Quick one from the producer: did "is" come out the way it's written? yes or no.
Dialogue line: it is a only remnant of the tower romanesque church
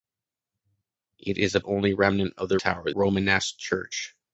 yes